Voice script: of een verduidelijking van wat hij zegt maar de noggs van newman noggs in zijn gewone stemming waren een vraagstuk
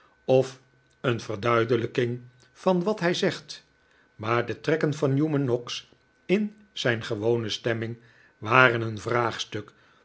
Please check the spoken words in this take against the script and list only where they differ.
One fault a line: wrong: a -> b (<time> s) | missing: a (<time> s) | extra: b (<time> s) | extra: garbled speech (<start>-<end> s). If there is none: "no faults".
wrong: noggs -> trekken (4.6 s)